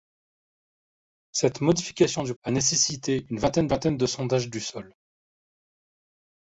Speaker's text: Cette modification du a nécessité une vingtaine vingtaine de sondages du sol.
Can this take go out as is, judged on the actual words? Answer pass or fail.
pass